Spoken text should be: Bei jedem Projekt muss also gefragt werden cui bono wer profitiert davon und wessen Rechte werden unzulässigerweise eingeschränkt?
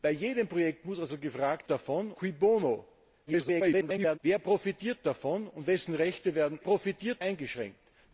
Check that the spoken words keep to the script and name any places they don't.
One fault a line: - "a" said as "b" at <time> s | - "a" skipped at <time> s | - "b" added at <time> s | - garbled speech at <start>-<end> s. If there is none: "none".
- "werden" said as "davon" at 1.7 s
- garbled speech at 3.3-4.2 s
- "unzulässigerweise" said as "profitiert" at 6.6 s